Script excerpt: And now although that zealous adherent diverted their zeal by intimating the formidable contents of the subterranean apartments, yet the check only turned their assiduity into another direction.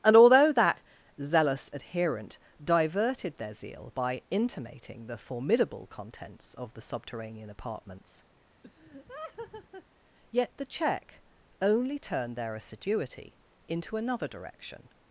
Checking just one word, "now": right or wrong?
wrong